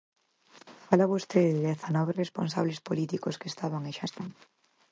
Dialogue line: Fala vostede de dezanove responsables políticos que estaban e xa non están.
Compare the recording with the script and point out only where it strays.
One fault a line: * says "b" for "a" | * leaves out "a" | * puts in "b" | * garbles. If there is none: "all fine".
* leaves out "non"